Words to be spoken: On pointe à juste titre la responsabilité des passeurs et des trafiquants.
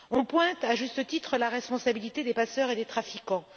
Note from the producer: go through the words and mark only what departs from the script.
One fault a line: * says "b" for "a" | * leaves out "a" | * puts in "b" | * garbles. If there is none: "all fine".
all fine